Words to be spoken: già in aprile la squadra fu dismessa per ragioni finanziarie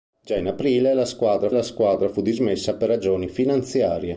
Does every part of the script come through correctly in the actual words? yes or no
no